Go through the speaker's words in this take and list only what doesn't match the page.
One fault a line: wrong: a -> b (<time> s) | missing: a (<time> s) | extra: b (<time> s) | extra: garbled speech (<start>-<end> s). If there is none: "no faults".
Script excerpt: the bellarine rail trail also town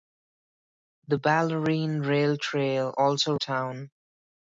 no faults